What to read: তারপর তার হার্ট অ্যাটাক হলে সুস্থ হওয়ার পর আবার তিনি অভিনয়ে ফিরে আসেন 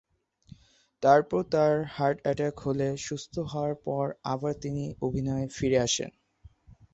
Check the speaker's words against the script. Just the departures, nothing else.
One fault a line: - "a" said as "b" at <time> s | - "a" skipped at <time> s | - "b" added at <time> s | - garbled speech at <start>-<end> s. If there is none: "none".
none